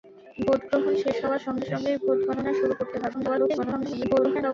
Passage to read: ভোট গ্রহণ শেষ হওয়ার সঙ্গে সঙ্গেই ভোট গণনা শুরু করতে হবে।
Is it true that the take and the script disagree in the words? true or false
true